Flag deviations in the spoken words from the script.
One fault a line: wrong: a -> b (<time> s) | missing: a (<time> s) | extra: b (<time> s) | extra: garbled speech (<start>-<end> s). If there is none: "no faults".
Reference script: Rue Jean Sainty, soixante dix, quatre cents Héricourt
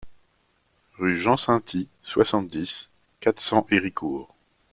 no faults